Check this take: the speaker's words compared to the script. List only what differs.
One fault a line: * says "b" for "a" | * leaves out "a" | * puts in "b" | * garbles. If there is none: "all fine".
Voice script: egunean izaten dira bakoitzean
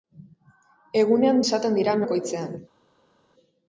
all fine